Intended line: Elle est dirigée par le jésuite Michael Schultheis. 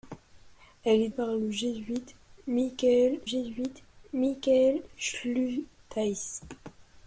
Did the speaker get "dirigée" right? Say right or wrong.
wrong